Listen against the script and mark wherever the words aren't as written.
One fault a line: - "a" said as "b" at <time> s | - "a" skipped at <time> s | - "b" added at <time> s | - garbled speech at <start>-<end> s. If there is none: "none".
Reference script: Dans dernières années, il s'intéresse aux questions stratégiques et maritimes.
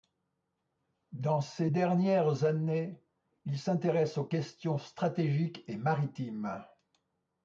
- "ses" added at 1.4 s